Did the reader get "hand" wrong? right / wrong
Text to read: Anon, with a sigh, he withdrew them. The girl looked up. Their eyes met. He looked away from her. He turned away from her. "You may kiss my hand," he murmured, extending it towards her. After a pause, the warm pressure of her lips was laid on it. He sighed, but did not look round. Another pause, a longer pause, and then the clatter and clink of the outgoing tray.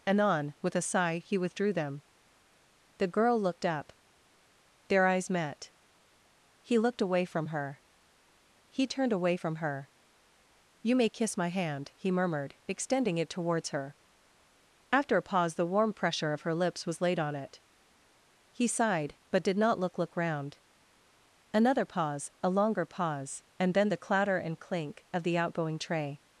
right